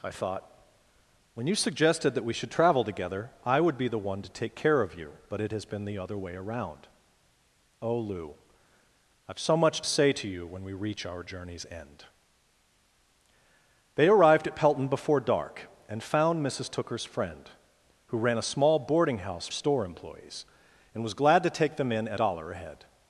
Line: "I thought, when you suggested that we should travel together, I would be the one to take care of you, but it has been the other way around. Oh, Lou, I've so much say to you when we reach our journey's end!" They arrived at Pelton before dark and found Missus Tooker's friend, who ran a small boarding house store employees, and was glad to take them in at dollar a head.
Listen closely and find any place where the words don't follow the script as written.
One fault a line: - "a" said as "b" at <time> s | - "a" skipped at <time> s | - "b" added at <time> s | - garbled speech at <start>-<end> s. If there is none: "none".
none